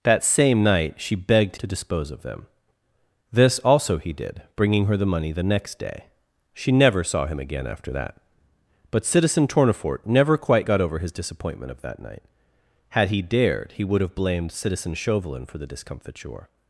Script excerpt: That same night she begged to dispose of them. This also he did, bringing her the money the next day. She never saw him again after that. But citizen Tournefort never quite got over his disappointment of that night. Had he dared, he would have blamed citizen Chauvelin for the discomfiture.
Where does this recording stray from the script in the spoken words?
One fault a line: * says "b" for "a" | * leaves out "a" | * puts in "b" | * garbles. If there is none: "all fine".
all fine